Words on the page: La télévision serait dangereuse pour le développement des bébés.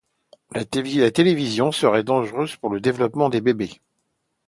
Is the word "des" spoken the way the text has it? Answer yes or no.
yes